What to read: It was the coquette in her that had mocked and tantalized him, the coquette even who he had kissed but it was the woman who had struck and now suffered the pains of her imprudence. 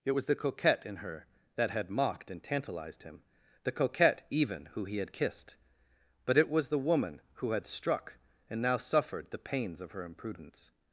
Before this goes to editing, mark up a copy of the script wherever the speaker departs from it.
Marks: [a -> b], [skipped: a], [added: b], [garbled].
It was the coquette in her that had mocked and tantalized him, the coquette even who he had kissed but it was the woman who had struck and now suffered the pains of her imprudence.